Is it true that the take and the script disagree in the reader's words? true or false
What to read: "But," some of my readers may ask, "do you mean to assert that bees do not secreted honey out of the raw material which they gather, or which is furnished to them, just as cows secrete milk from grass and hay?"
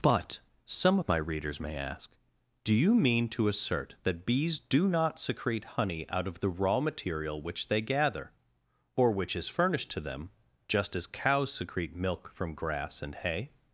true